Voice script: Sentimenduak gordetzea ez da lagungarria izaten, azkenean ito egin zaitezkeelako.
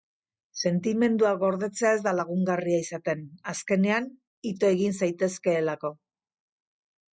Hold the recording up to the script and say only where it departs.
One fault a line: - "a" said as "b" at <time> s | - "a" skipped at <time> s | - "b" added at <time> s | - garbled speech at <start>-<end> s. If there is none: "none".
none